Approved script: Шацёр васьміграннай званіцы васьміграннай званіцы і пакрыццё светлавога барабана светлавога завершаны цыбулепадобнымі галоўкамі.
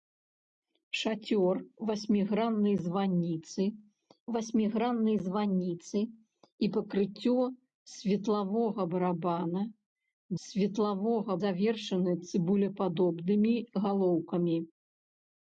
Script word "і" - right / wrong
right